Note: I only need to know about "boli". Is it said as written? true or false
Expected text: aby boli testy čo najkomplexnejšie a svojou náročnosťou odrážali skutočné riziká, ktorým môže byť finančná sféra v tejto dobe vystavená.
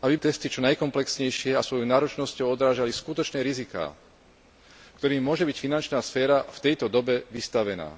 false